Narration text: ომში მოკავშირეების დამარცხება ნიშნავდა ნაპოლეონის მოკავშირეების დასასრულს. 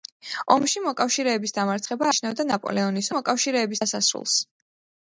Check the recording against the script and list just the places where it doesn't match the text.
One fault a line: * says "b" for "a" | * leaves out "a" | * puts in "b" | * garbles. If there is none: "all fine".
all fine